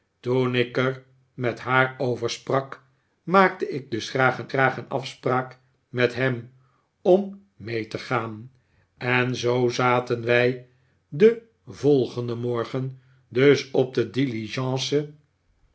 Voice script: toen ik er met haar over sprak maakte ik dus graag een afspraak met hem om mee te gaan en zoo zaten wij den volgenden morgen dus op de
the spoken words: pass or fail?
fail